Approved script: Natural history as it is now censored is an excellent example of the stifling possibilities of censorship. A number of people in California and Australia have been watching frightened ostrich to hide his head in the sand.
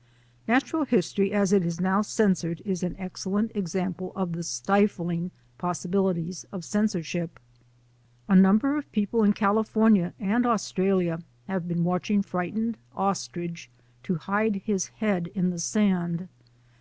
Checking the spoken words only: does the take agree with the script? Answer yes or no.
yes